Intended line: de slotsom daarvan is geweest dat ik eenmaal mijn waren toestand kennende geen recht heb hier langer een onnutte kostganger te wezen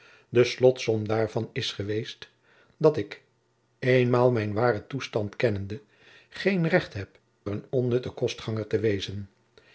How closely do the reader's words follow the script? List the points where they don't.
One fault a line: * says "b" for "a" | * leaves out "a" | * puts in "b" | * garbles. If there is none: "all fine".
* leaves out "hier langer"